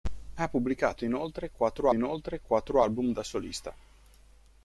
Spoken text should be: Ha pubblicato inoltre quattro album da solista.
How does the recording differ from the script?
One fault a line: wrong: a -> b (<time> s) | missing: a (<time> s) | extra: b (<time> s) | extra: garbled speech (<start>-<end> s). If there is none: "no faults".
extra: inoltre quattro (1.9 s)